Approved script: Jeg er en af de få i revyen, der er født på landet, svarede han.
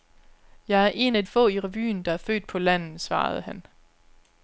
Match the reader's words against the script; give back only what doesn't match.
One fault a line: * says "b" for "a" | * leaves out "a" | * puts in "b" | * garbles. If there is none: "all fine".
* leaves out "de"